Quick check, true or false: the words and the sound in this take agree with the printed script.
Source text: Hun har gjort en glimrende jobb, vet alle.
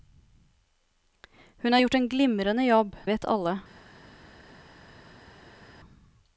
true